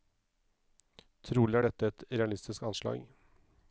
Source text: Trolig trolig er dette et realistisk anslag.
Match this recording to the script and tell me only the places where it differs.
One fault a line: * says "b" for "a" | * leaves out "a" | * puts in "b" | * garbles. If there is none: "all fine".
* leaves out "trolig"